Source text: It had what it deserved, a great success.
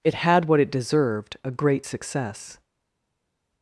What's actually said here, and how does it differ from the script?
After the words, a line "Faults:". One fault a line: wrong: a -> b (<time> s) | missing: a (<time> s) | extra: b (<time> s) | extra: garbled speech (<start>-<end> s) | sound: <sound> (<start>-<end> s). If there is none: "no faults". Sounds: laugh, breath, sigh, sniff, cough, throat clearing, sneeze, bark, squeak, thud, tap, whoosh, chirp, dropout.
It had what it deserved, a great success.
Faults:
no faults